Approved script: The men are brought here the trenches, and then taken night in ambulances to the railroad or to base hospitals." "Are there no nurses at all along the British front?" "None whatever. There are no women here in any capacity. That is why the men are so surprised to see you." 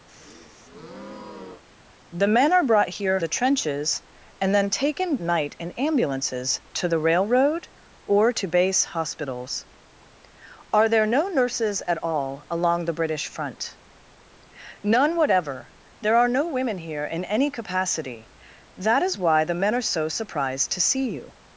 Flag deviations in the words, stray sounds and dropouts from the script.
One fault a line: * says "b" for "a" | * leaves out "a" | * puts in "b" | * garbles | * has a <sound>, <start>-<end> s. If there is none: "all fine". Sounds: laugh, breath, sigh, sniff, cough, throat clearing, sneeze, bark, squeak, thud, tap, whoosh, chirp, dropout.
* has a breath, 0.1-1.6 s